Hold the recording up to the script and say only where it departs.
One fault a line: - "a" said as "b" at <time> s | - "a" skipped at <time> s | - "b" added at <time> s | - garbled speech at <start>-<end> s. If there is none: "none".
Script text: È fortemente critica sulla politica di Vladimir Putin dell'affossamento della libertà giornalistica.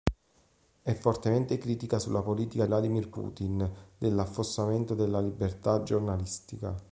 - "di" skipped at 2.6 s